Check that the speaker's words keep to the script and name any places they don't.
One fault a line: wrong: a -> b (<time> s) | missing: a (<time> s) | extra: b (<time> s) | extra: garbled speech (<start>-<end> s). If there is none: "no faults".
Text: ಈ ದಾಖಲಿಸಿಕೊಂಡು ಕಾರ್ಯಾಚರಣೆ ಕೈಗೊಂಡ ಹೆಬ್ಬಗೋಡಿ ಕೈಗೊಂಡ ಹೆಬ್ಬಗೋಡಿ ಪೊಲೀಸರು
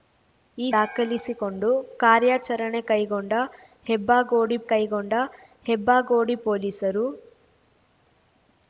no faults